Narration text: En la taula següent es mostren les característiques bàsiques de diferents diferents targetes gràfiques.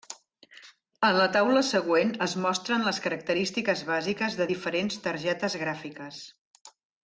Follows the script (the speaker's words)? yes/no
no